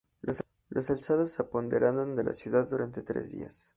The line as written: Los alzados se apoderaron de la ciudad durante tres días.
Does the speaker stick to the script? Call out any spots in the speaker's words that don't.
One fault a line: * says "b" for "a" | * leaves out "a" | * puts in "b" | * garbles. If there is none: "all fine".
all fine